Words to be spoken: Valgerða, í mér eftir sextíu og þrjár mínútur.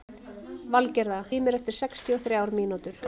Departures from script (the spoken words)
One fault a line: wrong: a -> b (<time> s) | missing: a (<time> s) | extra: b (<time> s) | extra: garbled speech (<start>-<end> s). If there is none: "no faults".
no faults